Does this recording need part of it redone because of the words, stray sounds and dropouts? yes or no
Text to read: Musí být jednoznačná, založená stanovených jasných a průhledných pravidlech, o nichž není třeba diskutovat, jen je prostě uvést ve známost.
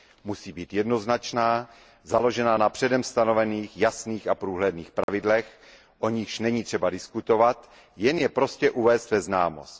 yes